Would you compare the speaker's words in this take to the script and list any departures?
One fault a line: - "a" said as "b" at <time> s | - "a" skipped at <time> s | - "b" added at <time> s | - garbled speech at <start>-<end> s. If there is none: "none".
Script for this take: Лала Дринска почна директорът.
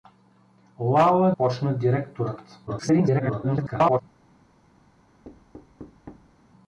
- "Дринска" skipped at 1.3 s
- garbled speech at 2.7-4.0 s